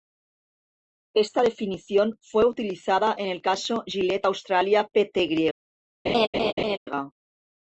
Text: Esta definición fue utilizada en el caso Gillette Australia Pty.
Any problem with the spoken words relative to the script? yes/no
no